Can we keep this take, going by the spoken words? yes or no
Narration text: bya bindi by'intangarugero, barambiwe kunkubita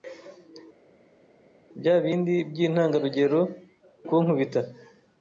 no